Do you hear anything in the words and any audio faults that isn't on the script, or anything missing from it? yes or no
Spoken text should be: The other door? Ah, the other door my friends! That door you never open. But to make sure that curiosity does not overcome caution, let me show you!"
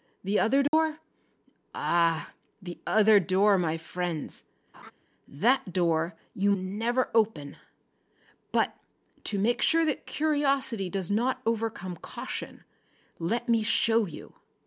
yes